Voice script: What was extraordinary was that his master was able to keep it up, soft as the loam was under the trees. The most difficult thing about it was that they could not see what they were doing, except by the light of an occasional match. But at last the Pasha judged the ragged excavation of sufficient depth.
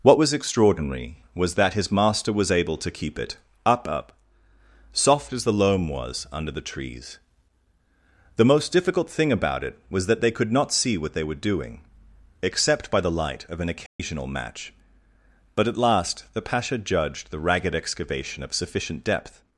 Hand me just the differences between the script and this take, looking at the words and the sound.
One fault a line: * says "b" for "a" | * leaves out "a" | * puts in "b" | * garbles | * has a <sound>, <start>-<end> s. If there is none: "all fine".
* puts in "up"
* has a dropout, 13.9-14.0 s